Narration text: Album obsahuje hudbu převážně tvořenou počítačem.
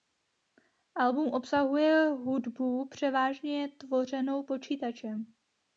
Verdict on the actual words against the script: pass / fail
pass